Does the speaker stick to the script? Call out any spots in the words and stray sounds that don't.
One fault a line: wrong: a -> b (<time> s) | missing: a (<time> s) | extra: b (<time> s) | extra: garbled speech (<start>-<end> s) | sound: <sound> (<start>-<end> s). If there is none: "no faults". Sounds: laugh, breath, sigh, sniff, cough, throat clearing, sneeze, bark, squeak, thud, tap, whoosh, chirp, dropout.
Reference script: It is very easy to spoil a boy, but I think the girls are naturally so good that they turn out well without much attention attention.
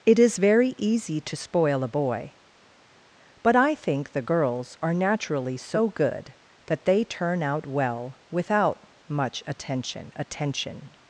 no faults